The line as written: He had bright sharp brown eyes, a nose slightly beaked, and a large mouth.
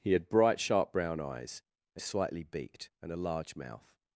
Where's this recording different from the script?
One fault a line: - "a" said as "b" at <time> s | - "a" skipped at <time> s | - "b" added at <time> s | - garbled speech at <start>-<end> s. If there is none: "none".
- "nose" skipped at 2.0 s